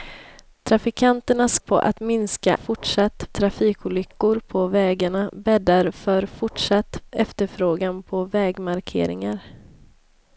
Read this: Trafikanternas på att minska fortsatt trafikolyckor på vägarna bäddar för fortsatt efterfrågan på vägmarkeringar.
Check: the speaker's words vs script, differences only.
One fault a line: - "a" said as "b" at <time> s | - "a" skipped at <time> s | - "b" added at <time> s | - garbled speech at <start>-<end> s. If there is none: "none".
none